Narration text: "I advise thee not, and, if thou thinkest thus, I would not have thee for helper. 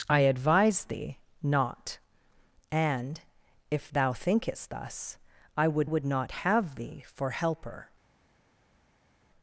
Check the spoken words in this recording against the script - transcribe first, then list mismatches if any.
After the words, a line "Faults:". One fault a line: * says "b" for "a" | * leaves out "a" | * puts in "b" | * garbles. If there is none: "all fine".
"I advise thee not, and, if thou thinkest thus, I would would not have thee for helper.
Faults:
* puts in "would"